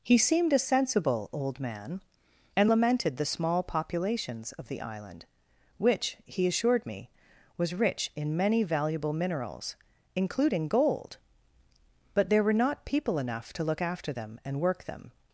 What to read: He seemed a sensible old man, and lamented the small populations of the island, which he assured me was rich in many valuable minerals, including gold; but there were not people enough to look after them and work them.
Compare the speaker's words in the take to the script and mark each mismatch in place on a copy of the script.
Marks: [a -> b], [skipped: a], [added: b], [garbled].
He seemed a sensible old man, and lamented the small populations of the island, which he assured me was rich in many valuable minerals, including gold; but there were not people enough to look after them and work them.